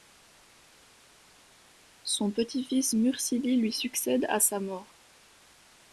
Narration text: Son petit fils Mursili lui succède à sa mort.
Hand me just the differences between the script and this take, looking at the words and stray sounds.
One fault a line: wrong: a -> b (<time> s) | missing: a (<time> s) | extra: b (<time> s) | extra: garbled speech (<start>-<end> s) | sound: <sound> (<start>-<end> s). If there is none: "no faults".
no faults